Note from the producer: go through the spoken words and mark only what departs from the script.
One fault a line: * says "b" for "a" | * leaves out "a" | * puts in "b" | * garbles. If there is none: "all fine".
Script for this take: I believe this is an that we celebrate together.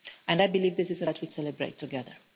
all fine